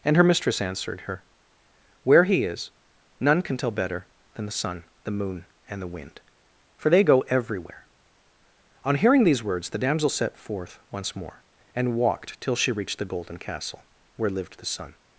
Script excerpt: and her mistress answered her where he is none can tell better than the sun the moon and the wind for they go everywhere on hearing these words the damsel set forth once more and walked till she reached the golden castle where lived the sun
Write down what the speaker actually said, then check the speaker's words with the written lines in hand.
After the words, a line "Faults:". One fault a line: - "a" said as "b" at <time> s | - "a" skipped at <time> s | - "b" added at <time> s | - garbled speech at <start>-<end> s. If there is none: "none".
and her mistress answered her where he is none can tell better than the sun the moon and the wind for they go everywhere on hearing these words the damsel set forth once more and walked till she reached the golden castle where lived the sun
Faults:
none